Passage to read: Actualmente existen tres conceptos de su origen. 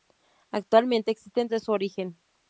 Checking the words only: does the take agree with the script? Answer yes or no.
no